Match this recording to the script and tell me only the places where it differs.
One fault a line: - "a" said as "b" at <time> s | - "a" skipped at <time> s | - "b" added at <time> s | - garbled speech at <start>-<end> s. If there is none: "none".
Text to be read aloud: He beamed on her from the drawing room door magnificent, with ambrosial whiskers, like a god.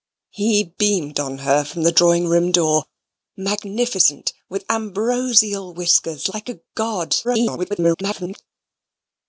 - garbled speech at 7.2-8.4 s